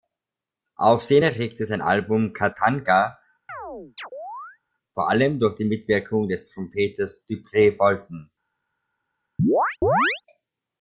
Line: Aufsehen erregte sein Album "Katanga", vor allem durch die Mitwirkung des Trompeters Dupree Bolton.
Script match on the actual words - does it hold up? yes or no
yes